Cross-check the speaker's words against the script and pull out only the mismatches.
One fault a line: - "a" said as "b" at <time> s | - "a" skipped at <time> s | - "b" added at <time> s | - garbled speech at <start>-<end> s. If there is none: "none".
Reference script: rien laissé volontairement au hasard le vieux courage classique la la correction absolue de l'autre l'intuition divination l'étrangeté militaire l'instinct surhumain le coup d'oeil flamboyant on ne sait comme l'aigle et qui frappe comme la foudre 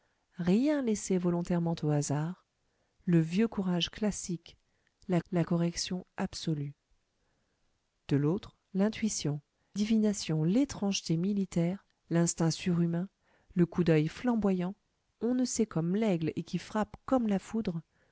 none